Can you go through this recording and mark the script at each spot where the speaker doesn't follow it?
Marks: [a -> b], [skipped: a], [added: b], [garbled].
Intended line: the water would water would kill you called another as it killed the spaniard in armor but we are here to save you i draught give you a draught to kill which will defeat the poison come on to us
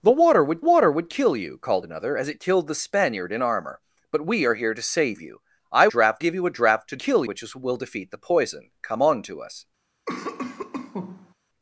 the water would water would kill you called another as it killed the spaniard in armor but we are here to save you i draught give you a draught to kill which will defeat the poison come on to us